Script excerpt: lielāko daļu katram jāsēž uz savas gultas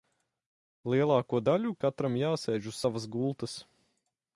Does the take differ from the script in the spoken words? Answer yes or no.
no